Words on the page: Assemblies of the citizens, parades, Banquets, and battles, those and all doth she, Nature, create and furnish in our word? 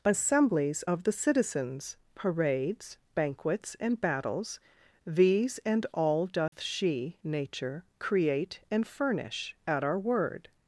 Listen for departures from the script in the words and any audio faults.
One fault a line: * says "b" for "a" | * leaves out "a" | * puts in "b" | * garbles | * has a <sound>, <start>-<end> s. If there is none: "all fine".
* says "these" for "those"
* has a dropout, 6.5-6.5 s
* says "at" for "in"